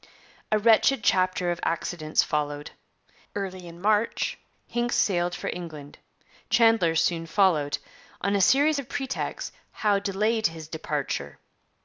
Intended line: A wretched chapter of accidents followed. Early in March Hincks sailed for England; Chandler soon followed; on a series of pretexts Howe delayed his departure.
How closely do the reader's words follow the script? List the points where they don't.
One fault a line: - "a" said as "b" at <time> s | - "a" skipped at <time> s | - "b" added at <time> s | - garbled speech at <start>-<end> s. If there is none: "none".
none